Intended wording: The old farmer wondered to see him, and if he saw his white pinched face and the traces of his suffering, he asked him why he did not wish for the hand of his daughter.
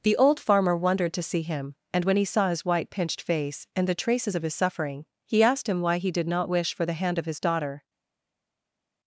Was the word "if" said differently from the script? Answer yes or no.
yes